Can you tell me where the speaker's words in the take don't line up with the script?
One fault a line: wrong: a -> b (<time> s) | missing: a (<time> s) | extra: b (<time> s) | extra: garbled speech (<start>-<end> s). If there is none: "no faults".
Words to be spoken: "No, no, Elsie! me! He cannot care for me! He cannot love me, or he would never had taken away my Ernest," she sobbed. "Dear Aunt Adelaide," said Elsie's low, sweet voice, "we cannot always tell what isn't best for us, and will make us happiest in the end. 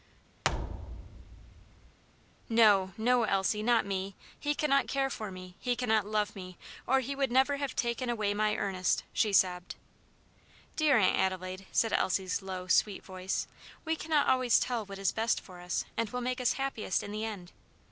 extra: not (3.6 s)
wrong: had -> have (7.6 s)
wrong: isn't -> is (15.0 s)